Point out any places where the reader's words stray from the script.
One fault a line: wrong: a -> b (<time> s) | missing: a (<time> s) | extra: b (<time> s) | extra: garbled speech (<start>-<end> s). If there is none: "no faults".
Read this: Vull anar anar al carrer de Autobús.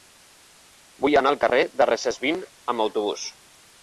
missing: anar (1.3 s)
extra: Recesvint amb (1.9 s)